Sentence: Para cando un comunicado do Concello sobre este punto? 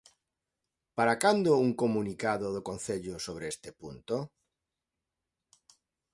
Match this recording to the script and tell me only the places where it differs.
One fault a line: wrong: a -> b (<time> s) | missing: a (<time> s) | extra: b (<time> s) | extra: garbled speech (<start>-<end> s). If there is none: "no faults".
no faults